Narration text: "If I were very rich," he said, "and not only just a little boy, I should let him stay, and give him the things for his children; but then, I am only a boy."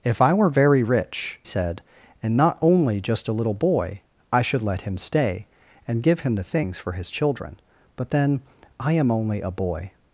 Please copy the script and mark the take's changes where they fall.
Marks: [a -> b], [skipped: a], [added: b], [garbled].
"If I were very rich," [skipped: he] said, "and not only just a little boy, I should let him stay, and give him the things for his children; but then, I am only a boy."